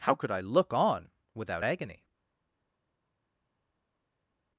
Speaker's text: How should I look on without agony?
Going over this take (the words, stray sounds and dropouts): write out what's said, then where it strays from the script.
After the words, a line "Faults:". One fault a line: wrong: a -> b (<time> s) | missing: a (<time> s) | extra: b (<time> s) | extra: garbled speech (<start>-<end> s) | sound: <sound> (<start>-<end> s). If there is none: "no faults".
How could I look on without agony?
Faults:
wrong: should -> could (0.1 s)